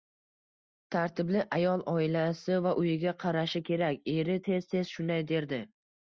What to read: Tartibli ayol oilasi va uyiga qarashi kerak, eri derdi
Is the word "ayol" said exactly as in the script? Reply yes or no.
yes